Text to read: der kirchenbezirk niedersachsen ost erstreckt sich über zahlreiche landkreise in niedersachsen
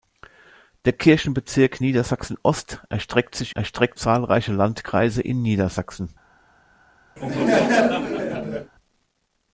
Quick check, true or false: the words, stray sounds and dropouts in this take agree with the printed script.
false